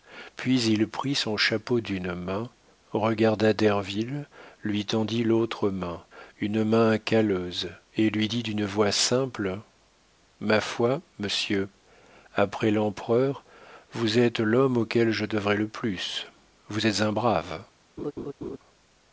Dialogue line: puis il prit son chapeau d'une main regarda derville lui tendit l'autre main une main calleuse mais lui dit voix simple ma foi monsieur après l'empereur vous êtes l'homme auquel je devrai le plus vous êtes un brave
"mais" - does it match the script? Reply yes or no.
no